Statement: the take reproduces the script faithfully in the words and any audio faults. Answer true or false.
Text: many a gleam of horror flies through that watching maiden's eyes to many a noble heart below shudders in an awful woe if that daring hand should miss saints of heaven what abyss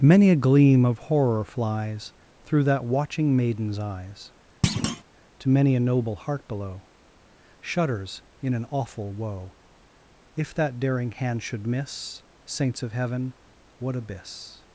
false